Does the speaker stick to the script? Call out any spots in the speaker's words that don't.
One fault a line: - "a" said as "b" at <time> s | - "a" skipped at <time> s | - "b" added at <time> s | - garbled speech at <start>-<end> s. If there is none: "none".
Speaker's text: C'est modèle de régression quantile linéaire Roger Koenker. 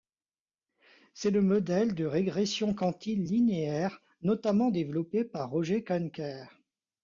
- "le" added at 1.3 s
- "notamment développé par" added at 4.2 s